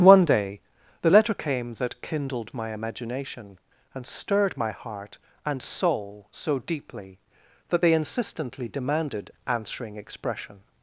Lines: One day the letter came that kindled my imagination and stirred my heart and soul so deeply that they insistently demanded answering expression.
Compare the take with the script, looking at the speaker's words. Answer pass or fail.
pass